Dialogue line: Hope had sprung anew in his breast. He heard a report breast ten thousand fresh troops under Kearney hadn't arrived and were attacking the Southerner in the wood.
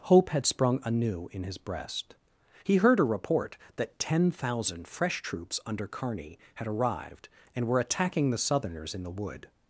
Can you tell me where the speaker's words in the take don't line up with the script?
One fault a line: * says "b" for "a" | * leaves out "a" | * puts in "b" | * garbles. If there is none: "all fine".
* says "that" for "breast"
* says "had" for "hadn't"
* says "Southerners" for "Southerner"